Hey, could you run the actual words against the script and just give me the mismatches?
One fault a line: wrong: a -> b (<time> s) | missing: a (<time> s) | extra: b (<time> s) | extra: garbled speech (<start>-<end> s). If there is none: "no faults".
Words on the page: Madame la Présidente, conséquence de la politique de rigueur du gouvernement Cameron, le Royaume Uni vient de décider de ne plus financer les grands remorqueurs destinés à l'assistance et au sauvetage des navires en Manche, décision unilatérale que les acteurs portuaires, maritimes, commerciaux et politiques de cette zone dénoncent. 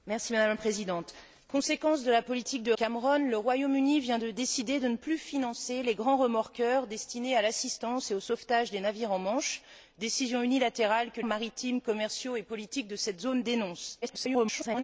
missing: rigueur du gouvernement (2.7 s)
missing: les acteurs portuaires (11.2 s)
extra: garbled speech (14.0-14.8 s)